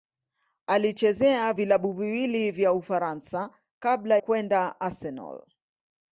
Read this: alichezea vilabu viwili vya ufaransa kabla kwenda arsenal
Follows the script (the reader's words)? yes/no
yes